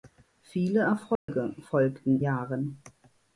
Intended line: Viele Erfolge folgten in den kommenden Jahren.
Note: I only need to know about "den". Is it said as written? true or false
false